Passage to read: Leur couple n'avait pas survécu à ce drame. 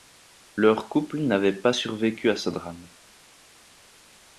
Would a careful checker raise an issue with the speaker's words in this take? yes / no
no